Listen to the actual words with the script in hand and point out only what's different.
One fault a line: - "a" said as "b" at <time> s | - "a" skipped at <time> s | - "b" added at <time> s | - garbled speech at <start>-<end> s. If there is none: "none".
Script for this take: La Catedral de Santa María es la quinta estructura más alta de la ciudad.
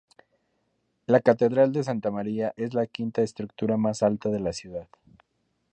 none